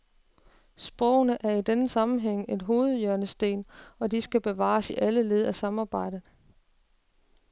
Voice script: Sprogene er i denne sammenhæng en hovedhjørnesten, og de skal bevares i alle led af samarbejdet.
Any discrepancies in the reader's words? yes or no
no